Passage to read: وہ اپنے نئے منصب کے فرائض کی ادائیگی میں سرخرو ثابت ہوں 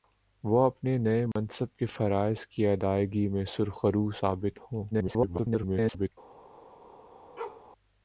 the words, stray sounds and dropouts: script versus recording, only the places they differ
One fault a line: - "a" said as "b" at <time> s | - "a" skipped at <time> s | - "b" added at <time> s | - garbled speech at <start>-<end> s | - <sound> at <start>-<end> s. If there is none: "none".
- dropout at 1.3-1.4 s
- garbled speech at 4.9-6.1 s
- bark at 7.4-7.7 s